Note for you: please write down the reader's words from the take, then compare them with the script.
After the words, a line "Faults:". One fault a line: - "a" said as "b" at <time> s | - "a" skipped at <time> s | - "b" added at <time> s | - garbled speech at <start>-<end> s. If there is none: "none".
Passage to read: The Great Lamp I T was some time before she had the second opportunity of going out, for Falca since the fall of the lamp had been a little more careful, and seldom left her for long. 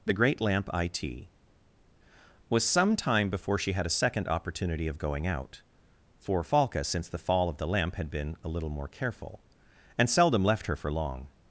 The Great Lamp I T was some time before she had a second opportunity of going out, for Falca since the fall of the lamp had been a little more careful, and seldom left her for long.
Faults:
- "the" said as "a" at 3.9 s